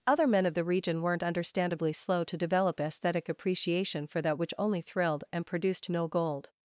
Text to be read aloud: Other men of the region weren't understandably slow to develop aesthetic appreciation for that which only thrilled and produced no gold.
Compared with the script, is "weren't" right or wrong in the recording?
right